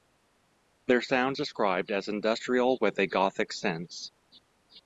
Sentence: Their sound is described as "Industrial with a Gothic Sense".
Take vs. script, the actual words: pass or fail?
fail